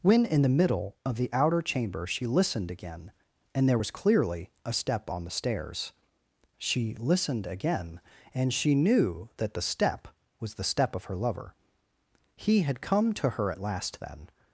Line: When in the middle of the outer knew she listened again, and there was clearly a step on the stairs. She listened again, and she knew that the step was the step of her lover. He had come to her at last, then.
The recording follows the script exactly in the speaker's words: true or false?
false